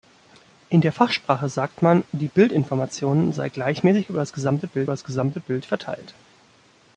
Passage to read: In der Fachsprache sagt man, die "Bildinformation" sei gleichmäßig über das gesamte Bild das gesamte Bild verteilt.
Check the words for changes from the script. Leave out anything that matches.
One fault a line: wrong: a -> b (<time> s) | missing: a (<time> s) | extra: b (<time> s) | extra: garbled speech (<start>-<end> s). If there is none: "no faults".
no faults